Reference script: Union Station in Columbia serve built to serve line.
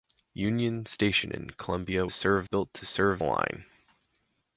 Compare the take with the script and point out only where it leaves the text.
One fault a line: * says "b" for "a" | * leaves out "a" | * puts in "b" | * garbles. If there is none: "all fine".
all fine